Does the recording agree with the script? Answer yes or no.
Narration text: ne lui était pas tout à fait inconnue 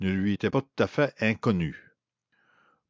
yes